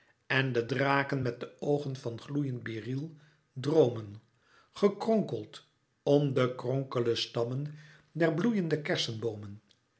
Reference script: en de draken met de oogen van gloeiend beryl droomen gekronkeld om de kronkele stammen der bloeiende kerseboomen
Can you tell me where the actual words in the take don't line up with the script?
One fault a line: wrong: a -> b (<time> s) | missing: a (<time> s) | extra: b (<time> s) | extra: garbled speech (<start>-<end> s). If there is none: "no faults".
no faults